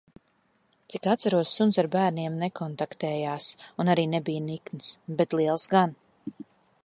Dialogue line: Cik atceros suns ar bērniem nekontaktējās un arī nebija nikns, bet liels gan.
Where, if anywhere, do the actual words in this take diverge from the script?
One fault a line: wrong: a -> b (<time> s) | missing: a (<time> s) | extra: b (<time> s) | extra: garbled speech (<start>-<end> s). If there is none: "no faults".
no faults